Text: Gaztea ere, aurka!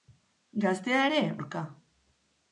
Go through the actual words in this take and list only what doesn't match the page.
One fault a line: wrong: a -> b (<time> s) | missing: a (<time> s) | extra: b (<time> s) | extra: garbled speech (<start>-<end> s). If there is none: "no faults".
no faults